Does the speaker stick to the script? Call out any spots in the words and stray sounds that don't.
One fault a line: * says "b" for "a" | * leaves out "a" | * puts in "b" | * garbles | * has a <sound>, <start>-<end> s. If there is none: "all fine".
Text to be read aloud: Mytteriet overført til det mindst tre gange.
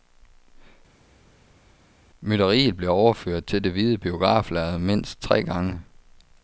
* puts in "blev"
* puts in "hvide biograflærrede"